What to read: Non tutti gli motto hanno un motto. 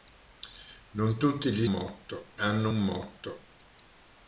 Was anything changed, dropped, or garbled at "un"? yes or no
no